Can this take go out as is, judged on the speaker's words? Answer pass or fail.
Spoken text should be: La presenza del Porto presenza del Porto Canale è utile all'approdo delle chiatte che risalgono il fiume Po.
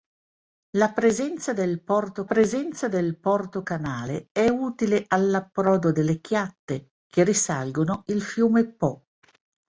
pass